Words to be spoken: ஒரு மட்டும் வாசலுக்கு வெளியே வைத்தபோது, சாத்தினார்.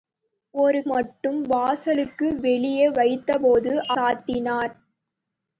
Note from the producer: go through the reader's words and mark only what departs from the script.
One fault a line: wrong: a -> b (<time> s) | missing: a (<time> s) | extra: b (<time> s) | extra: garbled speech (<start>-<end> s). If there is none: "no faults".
no faults